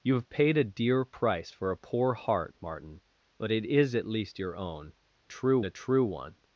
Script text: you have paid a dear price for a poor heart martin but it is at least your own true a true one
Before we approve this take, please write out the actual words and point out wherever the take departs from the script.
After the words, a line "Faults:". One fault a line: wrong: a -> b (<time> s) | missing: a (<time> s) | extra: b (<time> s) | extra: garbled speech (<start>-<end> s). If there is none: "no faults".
you have paid a dear price for a poor heart martin but it is at least your own true a true one
Faults:
no faults